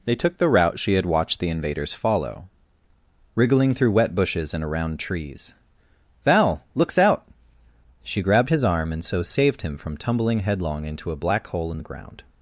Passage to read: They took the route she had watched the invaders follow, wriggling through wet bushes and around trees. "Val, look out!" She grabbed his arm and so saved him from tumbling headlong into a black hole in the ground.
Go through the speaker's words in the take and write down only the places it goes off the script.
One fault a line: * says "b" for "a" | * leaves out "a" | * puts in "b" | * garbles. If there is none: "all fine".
* says "looks" for "look"